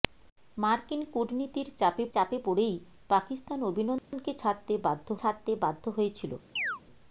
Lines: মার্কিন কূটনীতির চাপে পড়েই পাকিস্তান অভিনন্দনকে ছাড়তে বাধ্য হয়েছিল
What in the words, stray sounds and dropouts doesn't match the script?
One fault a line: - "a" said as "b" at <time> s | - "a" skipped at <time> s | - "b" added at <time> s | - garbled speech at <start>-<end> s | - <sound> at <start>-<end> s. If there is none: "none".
- "চাপে" added at 2.1 s
- dropout at 4.0-4.1 s
- "ছাড়তে বাধ্য" added at 5.2 s
- chirp at 6.6-6.8 s